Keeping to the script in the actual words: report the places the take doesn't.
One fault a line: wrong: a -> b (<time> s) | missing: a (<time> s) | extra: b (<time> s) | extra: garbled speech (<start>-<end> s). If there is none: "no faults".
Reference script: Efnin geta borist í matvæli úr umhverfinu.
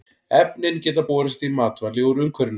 no faults